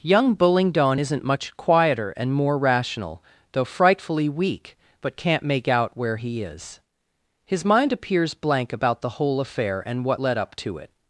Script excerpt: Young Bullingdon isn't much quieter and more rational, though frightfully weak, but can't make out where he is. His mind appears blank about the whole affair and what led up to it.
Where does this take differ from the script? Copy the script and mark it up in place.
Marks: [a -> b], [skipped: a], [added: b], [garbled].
Young Bullingdon isn't much quieter and more rational, though frightfully weak, but can't make out where he is. His mind appears blank about the whole affair and what led up to it.